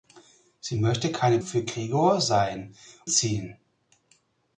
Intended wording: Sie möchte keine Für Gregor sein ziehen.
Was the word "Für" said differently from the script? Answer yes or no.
no